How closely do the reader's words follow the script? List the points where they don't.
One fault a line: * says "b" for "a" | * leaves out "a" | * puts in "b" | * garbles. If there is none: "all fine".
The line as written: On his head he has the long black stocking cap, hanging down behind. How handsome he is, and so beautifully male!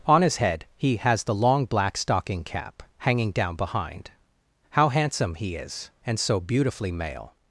all fine